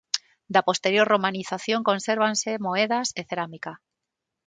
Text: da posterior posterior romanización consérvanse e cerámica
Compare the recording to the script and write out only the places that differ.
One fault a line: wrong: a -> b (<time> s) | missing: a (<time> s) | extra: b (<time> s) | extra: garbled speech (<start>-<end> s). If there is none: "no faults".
missing: posterior (1.1 s)
extra: moedas (2.7 s)